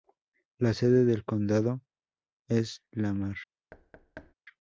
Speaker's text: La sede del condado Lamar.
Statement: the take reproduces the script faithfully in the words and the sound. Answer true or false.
false